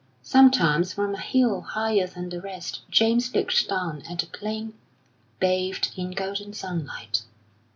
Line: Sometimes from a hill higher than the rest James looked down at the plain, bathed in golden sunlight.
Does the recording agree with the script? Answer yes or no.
yes